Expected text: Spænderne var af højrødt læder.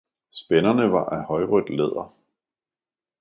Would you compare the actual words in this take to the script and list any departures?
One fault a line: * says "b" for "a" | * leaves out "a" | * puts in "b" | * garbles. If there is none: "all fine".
all fine